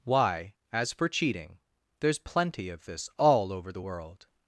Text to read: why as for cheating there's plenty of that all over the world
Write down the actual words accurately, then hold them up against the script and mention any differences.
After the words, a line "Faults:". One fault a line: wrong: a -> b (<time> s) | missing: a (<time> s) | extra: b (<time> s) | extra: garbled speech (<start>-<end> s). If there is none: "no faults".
why as for cheating there's plenty of this all over the world
Faults:
wrong: that -> this (2.9 s)